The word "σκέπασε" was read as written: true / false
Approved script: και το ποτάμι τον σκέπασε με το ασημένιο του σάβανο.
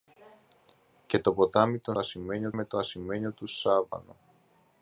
false